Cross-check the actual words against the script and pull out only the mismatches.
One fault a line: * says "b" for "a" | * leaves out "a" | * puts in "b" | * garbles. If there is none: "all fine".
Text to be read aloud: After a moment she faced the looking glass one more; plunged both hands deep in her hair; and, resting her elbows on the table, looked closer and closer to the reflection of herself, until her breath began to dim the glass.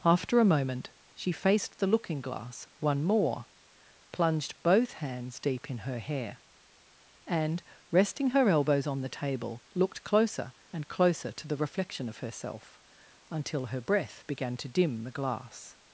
all fine